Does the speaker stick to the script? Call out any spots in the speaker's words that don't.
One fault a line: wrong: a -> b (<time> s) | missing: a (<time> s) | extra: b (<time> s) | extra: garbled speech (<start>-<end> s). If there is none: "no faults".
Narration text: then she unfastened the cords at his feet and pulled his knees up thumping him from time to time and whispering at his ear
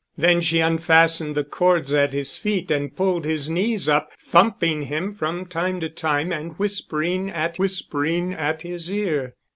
extra: whispering at (7.6 s)